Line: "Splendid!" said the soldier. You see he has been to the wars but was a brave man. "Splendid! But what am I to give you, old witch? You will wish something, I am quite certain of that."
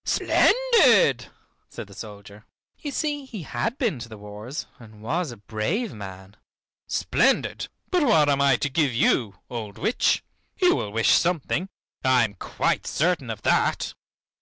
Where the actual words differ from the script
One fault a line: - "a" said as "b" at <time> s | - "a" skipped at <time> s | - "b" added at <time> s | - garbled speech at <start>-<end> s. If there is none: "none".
- "has" said as "had" at 3.4 s
- "but" said as "and" at 4.8 s